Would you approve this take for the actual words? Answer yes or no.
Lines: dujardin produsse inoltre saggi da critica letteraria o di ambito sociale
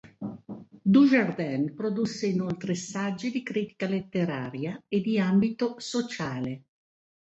no